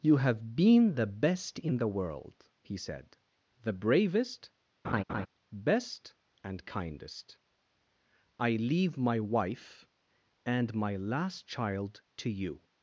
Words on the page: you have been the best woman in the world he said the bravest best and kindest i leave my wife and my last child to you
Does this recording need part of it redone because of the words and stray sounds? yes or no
yes